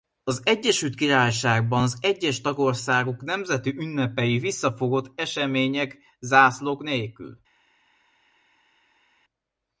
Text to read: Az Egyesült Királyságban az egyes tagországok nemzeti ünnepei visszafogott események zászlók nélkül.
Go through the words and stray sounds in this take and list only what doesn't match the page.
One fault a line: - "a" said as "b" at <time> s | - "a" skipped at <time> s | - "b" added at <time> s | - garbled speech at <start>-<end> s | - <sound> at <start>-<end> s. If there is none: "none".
none